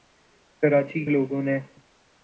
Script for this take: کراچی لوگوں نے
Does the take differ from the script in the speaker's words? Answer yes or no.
no